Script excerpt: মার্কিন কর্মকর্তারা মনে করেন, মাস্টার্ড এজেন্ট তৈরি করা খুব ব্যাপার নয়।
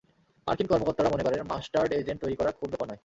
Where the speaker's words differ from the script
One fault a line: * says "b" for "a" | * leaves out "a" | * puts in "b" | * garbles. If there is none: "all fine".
all fine